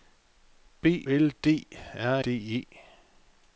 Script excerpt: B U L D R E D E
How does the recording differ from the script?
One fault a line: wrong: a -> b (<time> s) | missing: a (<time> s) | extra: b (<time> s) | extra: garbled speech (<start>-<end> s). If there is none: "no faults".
missing: U (1.1 s)
missing: E (2.2 s)